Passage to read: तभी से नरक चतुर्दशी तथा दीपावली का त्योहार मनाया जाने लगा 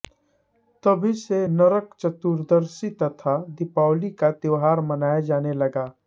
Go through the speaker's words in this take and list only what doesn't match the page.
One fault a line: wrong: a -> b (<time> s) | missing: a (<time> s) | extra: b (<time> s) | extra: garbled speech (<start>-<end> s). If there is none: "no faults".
no faults